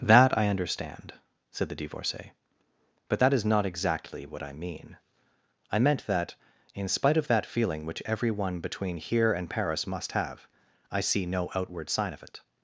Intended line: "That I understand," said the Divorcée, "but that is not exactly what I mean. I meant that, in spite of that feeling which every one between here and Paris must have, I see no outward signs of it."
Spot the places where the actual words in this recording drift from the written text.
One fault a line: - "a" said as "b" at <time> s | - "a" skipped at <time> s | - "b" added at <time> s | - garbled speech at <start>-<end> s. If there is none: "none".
- "signs" said as "sign" at 11.9 s